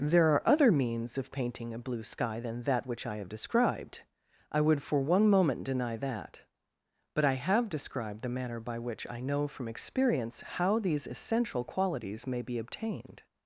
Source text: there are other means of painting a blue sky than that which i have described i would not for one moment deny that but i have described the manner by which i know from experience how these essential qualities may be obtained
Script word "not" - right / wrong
wrong